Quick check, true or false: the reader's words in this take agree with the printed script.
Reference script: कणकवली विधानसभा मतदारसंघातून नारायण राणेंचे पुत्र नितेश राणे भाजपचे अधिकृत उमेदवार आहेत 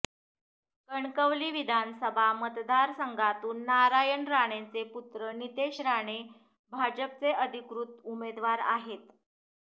true